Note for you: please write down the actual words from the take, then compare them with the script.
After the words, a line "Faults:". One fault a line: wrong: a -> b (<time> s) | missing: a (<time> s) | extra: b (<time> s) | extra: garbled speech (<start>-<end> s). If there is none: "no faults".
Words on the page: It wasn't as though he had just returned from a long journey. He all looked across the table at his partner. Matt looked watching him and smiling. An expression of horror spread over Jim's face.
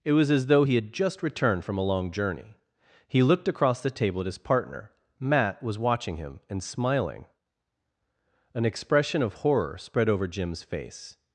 It was as though he had just returned from a long journey. He looked across the table at his partner. Matt was watching him and smiling. An expression of horror spread over Jim's face.
Faults:
wrong: wasn't -> was (0.1 s)
missing: all (3.2 s)
wrong: looked -> was (5.6 s)